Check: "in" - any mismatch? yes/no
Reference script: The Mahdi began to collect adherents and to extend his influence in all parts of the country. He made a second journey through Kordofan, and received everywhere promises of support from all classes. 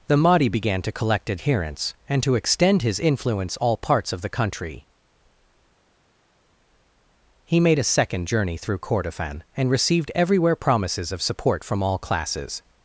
yes